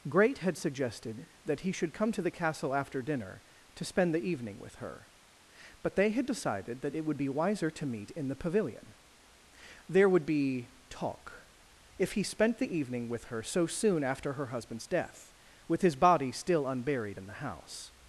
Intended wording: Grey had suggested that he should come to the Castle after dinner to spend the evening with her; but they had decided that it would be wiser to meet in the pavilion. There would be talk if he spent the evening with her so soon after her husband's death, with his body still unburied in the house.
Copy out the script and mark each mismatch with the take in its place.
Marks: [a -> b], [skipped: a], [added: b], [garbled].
[Grey -> Great] had suggested that he should come to the Castle after dinner to spend the evening with her; but they had decided that it would be wiser to meet in the pavilion. There would be talk if he spent the evening with her so soon after her husband's death, with his body still unburied in the house.